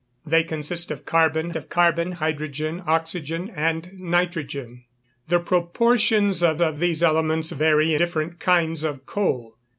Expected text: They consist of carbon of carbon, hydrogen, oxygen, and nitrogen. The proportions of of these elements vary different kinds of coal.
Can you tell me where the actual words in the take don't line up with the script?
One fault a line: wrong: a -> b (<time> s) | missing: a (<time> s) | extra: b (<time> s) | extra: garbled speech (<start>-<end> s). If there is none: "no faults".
no faults